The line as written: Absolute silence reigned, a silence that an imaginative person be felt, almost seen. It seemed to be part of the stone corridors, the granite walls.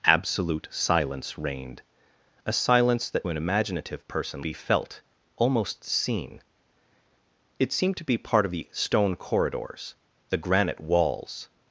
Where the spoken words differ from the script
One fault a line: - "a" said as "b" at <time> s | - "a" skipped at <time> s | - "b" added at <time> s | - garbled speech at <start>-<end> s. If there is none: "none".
none